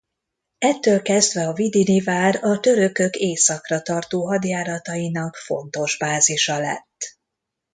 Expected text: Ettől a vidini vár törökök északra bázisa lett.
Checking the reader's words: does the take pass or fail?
fail